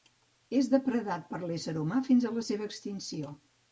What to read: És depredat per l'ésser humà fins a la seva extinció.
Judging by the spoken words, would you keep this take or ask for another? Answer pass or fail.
pass